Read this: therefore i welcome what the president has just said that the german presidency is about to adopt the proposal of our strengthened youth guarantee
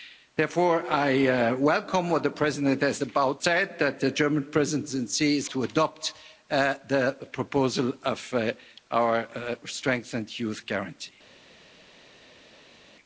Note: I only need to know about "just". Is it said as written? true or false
false